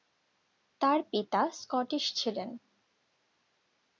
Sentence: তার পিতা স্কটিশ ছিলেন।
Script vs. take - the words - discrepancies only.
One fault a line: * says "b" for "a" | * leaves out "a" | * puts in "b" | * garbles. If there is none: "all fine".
all fine